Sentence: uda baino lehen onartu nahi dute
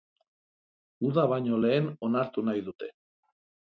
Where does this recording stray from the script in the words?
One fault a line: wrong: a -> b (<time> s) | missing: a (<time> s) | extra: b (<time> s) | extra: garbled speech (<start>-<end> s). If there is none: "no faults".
no faults